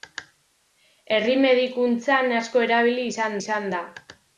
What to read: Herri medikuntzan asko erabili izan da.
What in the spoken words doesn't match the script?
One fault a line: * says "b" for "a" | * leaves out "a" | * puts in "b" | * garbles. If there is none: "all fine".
* puts in "izan"